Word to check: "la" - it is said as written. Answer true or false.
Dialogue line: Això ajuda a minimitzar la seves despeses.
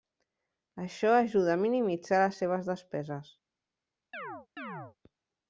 false